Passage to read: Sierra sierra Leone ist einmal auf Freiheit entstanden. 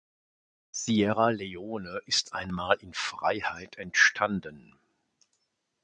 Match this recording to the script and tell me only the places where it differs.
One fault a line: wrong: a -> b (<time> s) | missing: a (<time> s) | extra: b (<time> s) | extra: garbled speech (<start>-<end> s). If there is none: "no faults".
missing: sierra (1.3 s)
wrong: auf -> in (2.8 s)